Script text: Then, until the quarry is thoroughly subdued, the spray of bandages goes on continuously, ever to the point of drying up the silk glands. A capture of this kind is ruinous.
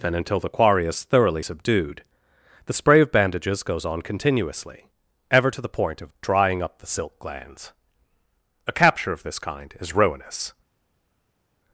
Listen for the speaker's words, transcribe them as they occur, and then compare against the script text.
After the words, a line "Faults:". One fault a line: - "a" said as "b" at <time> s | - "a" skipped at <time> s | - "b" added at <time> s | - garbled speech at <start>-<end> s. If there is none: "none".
Then, until the quarry is thoroughly subdued, the spray of bandages goes on continuously, ever to the point of drying up the silk glands. A capture of this kind is ruinous.
Faults:
none